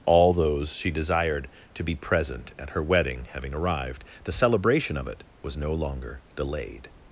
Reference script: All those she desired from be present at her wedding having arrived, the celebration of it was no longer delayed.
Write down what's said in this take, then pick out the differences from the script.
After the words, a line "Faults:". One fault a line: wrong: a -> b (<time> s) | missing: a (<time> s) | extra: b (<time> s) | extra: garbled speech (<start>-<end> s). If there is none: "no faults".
All those she desired to be present at her wedding having arrived, the celebration of it was no longer delayed.
Faults:
wrong: from -> to (1.7 s)